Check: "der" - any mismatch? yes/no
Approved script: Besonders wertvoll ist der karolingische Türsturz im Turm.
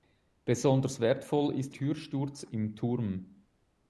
yes